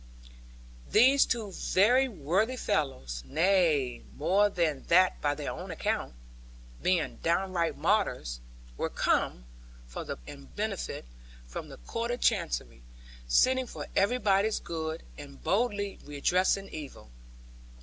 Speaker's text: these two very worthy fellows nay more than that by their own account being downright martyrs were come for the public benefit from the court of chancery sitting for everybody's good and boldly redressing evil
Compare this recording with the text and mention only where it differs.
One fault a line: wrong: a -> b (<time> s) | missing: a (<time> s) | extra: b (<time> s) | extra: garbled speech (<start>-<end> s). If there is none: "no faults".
wrong: public -> and (10.3 s)